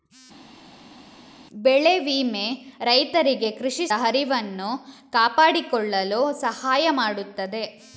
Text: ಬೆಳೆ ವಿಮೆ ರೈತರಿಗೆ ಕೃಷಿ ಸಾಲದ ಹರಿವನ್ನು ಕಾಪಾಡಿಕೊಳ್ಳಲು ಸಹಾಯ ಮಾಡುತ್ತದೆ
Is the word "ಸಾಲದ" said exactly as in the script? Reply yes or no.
no